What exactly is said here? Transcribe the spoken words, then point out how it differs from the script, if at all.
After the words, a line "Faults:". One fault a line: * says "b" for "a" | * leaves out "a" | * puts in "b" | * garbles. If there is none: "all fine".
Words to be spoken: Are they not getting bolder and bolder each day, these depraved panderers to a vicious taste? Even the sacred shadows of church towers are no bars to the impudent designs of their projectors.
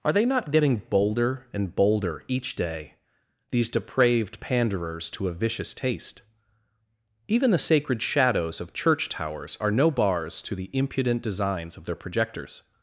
Are they not getting bolder and bolder each day, these depraved panderers to a vicious taste? Even the sacred shadows of church towers are no bars to the impudent designs of their projectors.
Faults:
all fine